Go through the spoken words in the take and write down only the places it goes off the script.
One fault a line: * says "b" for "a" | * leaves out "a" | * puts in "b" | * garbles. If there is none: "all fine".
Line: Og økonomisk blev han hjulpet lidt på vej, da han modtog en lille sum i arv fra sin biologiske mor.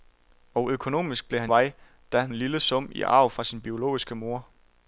* leaves out "hjulpet lidt på"
* leaves out "modtog"